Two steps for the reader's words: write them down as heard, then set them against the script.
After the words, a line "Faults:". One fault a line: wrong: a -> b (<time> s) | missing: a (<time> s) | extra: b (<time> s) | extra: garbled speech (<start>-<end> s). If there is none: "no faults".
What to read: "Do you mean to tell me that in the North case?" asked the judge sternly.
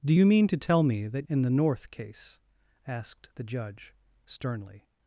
"Do you mean to tell me that in the North case?" asked the judge sternly.
Faults:
no faults